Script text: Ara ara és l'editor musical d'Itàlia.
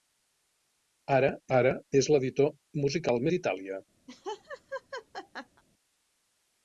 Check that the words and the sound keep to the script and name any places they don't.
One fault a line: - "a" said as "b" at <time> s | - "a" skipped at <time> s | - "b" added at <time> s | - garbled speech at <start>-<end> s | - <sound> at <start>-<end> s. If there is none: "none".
- laugh at 4.1-5.6 s